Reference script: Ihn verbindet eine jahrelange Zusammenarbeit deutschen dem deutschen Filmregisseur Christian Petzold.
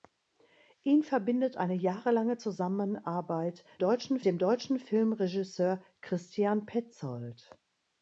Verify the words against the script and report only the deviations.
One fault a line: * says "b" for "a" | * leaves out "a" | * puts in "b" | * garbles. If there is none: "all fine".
all fine